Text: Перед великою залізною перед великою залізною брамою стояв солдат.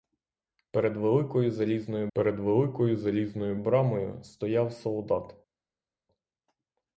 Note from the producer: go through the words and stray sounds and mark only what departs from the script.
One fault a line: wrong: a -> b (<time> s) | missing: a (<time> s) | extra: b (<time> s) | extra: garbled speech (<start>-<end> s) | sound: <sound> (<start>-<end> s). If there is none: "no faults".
no faults